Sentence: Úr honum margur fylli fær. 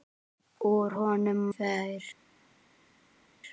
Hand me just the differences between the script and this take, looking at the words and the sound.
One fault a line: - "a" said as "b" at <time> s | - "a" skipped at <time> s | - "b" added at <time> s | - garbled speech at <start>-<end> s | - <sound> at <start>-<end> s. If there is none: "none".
- "margur fylli" skipped at 1.4 s